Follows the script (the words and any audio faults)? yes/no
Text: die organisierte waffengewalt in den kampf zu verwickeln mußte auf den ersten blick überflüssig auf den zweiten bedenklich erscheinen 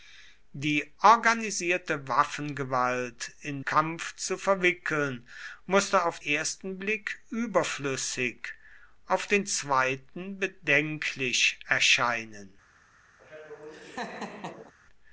no